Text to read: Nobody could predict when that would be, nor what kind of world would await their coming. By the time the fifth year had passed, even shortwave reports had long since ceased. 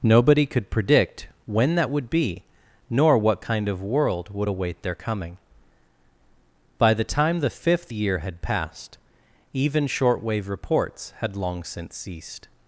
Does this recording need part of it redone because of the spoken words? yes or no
no